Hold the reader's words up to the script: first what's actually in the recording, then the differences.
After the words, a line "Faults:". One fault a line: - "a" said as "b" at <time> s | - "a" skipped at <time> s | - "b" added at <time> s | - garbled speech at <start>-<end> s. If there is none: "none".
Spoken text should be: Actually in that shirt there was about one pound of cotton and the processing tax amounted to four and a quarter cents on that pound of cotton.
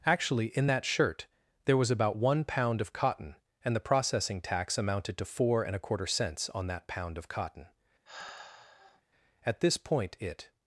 Actually in that shirt there was about one pound of cotton and the processing tax amounted to four and a quarter cents on that pound of cotton. At this point it
Faults:
- "At this point it" added at 9.4 s